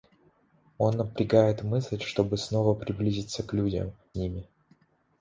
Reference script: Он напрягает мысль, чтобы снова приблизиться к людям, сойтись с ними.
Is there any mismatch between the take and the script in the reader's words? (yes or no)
yes